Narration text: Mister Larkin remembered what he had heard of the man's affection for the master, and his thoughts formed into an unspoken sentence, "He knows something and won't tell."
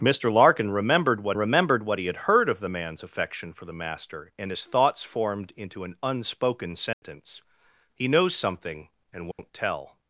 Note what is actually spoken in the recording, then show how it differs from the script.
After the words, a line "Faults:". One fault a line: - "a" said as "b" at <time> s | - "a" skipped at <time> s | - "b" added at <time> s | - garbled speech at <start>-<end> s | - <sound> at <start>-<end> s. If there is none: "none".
Mister Larkin remembered what remembered what he had heard of the man's affection for the master, and his thoughts formed into an unspoken sentence, "He knows something and won't tell."
Faults:
- "remembered what" added at 1.4 s
- dropout at 6.9-7.0 s
- dropout at 9.3-9.4 s